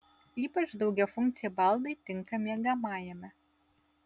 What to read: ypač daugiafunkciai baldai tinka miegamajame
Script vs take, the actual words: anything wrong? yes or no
no